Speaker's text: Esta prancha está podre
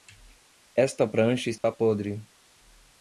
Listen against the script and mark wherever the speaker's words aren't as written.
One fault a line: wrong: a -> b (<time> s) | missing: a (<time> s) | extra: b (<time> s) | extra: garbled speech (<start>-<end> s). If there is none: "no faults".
no faults